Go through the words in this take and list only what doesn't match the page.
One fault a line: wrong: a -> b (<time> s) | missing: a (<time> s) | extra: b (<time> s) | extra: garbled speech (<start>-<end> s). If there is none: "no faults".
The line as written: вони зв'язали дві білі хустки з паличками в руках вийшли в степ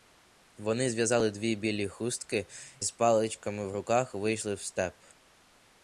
no faults